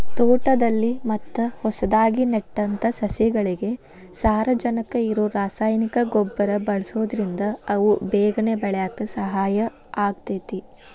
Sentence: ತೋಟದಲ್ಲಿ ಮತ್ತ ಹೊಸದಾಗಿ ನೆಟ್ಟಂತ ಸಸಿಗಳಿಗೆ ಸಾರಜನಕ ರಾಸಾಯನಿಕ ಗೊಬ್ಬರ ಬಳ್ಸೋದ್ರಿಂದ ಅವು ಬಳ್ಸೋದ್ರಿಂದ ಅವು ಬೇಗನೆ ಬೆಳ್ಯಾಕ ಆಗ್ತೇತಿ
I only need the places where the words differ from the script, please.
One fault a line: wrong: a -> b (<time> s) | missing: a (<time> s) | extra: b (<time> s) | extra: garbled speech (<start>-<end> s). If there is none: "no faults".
extra: ಇರೋ (5.1 s)
missing: ಬಳ್ಸೋದ್ರಿಂದ ಅವು (7.9 s)
extra: ಸಹಾಯ (9.2 s)